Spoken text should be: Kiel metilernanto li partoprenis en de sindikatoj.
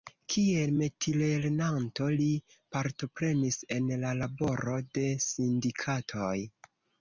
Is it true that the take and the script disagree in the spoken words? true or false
true